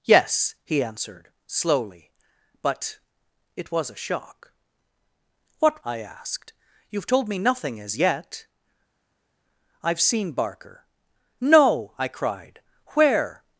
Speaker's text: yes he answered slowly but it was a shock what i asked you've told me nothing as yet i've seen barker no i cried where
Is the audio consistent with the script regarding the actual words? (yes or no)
yes